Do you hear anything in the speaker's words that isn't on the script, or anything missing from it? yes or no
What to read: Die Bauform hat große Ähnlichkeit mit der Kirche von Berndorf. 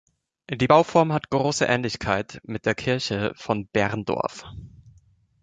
no